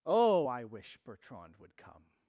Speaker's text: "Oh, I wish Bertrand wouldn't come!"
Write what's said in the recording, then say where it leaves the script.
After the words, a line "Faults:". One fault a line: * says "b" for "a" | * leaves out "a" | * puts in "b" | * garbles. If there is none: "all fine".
"Oh, I wish Bertrand would come!"
Faults:
* says "would" for "wouldn't"